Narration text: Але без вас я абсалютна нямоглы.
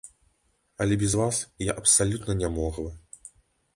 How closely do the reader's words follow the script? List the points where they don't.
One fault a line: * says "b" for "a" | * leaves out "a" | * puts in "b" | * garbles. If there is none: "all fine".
all fine